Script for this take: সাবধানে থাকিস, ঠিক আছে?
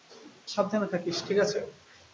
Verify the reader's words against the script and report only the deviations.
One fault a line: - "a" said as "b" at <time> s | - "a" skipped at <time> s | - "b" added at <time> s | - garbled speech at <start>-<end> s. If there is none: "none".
none